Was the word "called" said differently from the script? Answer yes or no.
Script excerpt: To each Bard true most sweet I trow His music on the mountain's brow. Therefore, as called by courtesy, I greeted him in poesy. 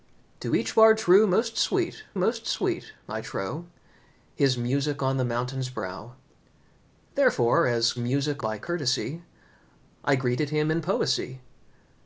yes